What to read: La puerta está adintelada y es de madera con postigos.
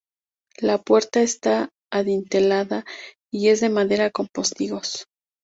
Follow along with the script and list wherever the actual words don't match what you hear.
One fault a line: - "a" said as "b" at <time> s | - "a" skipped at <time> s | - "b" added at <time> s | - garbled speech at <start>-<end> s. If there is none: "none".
none